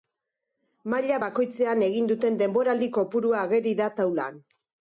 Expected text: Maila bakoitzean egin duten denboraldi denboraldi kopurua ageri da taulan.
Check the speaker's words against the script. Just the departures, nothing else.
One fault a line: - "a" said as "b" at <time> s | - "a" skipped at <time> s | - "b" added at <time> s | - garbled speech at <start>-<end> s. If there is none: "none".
- "denboraldi" skipped at 2.9 s